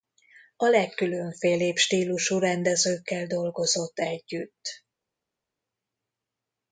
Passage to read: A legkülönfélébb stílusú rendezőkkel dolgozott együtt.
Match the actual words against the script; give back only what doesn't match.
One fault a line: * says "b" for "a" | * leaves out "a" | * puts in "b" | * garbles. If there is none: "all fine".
all fine